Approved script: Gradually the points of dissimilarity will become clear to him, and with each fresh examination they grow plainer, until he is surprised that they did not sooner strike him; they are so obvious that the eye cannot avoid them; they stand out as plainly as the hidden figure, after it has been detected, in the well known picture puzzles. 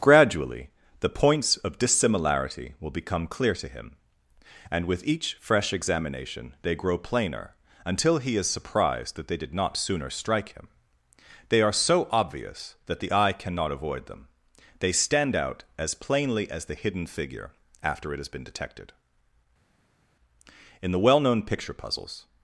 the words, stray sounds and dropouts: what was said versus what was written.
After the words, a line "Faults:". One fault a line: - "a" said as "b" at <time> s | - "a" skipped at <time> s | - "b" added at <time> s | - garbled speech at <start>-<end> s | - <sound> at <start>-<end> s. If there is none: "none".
Gradually the points of dissimilarity will become clear to him, and with each fresh examination they grow plainer, until he is surprised that they did not sooner strike him; they are so obvious that the eye cannot avoid them; they stand out as plainly as the hidden figure, after it has been detected, in the well known picture puzzles.
Faults:
none